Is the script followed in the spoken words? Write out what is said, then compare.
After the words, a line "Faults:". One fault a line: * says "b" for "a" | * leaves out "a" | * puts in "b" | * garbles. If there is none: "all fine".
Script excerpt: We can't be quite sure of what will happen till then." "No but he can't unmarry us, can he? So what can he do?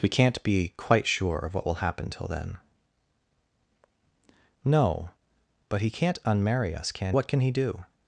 We can't be quite sure of what will happen till then." "No but he can't unmarry us, can what can he do?
Faults:
* leaves out "he So"